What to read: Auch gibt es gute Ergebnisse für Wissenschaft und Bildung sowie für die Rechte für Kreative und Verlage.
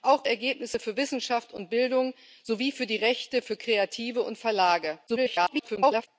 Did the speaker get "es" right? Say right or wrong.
wrong